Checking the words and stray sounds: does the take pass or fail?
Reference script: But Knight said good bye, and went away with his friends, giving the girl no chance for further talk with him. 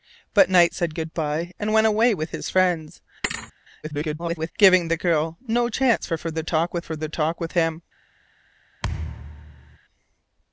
fail